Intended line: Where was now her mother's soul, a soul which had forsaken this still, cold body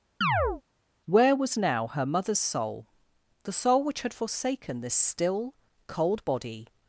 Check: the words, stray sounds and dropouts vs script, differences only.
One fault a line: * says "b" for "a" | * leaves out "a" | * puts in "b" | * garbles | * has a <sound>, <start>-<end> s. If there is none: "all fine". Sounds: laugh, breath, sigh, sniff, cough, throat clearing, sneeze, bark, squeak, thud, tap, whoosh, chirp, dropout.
* has a chirp, 0.2-0.6 s
* says "the" for "a"